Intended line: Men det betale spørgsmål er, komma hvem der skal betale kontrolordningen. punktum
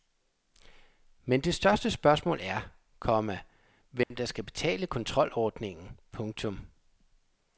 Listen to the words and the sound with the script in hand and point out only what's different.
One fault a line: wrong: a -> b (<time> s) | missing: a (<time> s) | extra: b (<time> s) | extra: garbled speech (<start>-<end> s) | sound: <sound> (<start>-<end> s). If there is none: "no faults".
wrong: betale -> største (1.6 s)
sound: dropout (4.0-4.1 s)